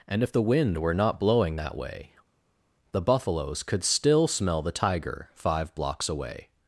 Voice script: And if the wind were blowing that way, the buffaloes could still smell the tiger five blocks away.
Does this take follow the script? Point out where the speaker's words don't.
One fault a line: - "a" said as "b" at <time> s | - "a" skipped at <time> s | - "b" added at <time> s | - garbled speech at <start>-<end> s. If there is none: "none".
- "not" added at 0.9 s